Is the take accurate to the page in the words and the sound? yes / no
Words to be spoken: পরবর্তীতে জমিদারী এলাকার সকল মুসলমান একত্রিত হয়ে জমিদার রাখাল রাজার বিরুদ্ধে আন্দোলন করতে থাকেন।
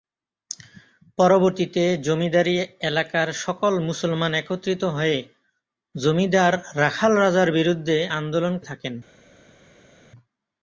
no